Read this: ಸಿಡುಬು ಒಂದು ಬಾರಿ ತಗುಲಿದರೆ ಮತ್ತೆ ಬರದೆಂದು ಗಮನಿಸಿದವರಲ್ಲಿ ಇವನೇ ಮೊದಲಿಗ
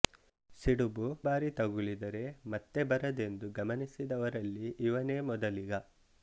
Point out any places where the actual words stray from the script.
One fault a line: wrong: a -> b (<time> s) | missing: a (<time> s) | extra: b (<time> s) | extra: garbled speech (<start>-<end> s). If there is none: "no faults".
missing: ಒಂದು (1.1 s)